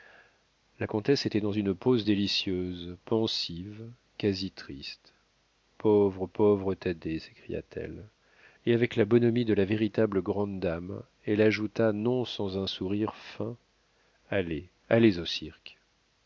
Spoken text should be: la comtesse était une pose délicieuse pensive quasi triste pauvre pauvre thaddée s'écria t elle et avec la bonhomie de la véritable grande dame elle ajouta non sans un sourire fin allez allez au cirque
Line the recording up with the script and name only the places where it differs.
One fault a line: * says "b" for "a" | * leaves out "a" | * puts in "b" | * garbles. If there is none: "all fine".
* puts in "dans"